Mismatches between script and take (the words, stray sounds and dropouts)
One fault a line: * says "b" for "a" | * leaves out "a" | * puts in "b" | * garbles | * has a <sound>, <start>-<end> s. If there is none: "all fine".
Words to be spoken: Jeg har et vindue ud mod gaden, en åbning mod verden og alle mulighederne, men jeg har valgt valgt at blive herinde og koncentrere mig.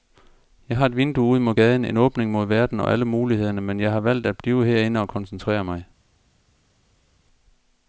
* leaves out "valgt"